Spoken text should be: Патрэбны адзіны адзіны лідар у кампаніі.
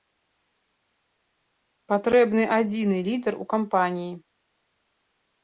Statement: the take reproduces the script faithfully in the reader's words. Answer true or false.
false